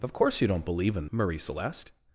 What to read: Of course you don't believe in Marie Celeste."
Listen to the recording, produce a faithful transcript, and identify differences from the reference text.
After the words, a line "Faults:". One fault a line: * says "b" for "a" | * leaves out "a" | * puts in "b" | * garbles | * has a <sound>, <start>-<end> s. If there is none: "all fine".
Of course you don't believe in Marie Celeste."
Faults:
all fine